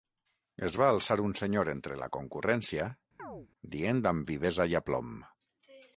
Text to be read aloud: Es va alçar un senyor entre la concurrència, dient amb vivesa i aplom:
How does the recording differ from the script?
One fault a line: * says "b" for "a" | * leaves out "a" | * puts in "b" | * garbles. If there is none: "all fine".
all fine